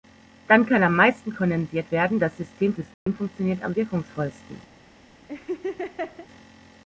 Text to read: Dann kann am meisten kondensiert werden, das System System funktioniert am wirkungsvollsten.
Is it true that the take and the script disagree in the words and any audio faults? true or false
true